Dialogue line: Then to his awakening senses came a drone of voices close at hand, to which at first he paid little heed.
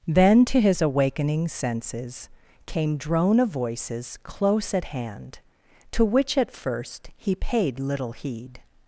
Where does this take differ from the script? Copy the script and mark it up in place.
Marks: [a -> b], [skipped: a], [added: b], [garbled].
Then to his awakening senses came [skipped: a] drone of voices close at hand, to which at first he paid little heed.